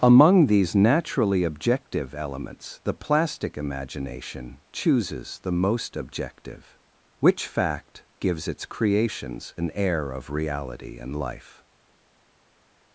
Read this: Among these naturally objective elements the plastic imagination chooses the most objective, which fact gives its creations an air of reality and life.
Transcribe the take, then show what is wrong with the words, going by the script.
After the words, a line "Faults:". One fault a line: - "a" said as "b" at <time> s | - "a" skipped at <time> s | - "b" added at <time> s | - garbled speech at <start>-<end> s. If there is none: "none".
Among these naturally objective elements the plastic imagination chooses the most objective, which fact gives its creations an air of reality and life.
Faults:
none